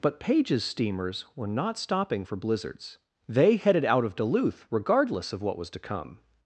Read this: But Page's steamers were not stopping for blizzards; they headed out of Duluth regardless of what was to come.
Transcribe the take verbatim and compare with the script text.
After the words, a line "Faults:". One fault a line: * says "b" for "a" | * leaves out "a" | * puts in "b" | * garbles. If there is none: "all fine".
But Page's steamers were not stopping for blizzards; they headed out of Duluth regardless of what was to come.
Faults:
all fine